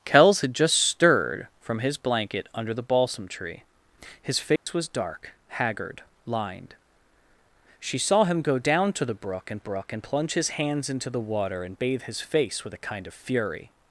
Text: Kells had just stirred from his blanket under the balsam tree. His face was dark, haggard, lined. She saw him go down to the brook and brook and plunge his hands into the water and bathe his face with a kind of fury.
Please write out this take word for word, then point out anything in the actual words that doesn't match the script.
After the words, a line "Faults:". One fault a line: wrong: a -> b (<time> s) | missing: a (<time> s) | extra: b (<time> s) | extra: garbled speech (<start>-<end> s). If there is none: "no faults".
Kells had just stirred from his blanket under the balsam tree. His face was dark, haggard, lined. She saw him go down to the brook and brook and plunge his hands into the water and bathe his face with a kind of fury.
Faults:
no faults